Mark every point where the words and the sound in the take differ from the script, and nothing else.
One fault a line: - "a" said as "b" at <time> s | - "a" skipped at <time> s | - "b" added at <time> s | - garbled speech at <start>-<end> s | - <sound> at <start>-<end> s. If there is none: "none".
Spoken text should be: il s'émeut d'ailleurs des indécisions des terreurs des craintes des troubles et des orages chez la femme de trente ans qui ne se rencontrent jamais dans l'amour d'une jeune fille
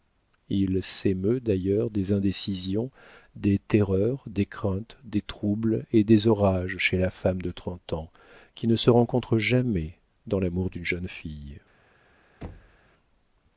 - thud at 12.4-12.8 s